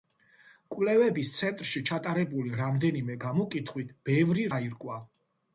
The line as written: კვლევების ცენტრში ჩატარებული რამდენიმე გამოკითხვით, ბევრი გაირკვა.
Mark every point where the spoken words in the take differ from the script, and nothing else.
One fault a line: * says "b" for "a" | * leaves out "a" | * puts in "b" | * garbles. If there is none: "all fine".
all fine